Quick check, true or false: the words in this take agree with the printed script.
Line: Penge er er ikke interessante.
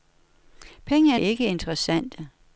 true